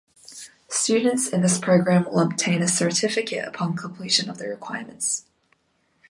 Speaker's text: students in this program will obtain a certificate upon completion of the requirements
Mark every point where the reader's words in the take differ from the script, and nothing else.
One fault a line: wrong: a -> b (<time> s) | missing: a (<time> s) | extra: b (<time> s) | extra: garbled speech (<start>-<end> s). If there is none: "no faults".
no faults